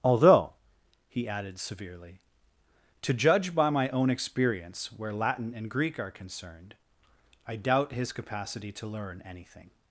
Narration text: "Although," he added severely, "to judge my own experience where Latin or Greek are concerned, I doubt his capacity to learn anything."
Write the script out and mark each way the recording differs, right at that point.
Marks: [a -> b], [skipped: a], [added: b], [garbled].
"Although," he added severely, "to judge [added: by] my own experience where Latin [or -> and] Greek are concerned, I doubt his capacity to learn anything."